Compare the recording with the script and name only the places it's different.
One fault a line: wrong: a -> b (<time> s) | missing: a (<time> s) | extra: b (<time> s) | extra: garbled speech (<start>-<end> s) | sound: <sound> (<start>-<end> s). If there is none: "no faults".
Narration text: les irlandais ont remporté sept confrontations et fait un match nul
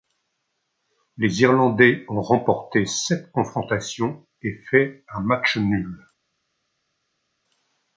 no faults